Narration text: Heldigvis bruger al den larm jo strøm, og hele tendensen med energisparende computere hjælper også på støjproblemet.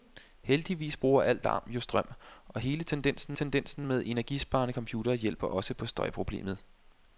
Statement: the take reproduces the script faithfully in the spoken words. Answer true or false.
false